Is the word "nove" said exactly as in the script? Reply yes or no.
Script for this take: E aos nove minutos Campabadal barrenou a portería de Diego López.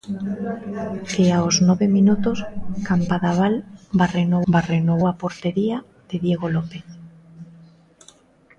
yes